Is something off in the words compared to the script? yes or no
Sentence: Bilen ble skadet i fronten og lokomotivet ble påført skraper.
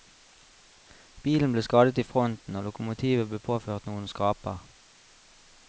yes